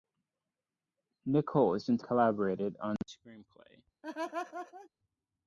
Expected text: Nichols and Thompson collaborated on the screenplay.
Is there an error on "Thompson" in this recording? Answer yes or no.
yes